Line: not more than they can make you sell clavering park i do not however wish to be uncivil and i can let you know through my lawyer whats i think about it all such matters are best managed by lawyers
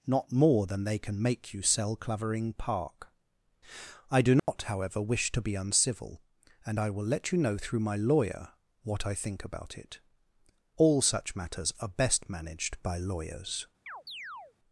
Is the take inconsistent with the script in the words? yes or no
yes